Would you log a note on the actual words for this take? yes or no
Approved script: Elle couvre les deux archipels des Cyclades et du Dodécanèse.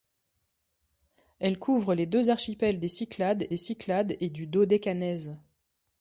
yes